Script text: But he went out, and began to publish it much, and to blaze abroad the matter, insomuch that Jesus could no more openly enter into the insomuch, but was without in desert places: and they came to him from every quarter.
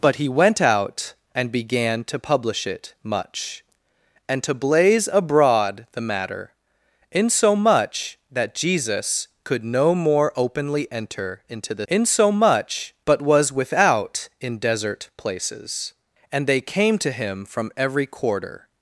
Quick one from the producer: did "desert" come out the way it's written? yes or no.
yes